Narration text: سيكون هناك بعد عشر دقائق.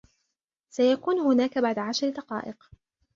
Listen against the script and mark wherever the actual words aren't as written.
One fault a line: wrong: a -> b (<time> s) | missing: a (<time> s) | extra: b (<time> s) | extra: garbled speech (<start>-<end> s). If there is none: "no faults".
no faults